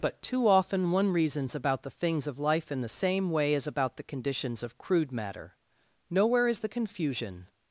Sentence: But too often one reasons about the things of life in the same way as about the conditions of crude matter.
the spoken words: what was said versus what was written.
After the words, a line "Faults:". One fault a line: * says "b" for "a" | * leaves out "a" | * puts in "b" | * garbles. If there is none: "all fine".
But too often one reasons about the things of life in the same way as about the conditions of crude matter. Nowhere is the confusion
Faults:
* puts in "Nowhere is the confusion"